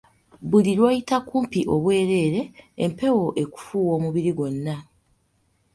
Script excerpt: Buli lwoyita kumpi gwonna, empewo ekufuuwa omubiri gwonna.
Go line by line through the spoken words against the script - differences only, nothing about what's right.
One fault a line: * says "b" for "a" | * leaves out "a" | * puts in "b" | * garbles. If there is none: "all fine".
* says "obwereere" for "gwonna"